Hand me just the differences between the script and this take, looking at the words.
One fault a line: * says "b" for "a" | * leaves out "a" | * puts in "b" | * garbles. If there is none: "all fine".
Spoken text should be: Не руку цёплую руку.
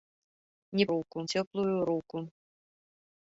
all fine